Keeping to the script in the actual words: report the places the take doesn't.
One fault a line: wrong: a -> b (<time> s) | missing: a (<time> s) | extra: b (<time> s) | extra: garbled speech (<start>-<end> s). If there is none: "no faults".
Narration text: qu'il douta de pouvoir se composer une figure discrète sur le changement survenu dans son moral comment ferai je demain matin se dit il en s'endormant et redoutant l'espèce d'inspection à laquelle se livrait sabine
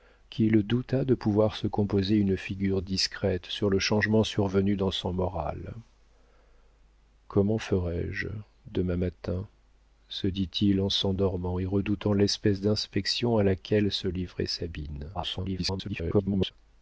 extra: garbled speech (15.1-16.5 s)